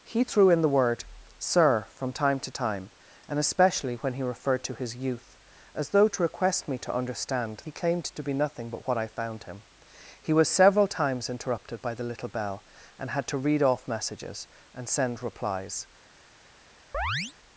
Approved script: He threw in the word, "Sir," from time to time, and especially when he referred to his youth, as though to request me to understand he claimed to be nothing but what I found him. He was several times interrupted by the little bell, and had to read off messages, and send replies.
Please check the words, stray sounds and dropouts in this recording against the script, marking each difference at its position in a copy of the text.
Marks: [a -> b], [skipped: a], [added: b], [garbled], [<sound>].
He threw in the word, "Sir," from time to time, and especially when he referred to his youth, as though to request me to understand he claimed to be nothing but what I found him. He was several times interrupted by the little bell, and had to read off messages, and send replies. [chirp]